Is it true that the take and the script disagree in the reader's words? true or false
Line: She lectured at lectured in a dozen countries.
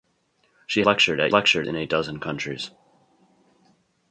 false